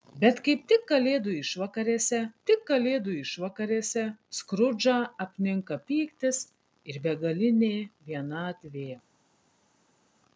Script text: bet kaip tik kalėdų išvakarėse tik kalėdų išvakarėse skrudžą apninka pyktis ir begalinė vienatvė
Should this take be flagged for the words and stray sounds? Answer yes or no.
no